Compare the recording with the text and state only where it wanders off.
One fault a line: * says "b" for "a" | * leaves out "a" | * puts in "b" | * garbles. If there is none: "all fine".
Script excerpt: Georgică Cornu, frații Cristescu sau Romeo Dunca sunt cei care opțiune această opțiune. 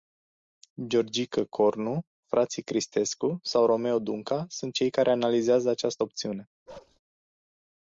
* says "analizează" for "opțiune"